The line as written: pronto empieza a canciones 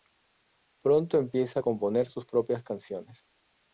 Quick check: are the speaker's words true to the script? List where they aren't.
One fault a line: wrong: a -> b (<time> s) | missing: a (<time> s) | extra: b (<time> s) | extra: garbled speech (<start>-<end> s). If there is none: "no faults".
extra: componer sus propias (1.6 s)